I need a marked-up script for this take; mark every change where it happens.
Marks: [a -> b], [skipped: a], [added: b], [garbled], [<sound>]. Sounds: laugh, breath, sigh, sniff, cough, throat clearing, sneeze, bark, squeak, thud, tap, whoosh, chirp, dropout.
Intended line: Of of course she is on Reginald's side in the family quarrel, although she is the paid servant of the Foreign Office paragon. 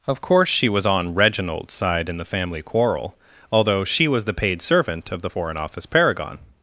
Of [skipped: of] course she [is -> was] on Reginald's side in the family quarrel, although she [is -> was] the paid servant of the Foreign Office paragon.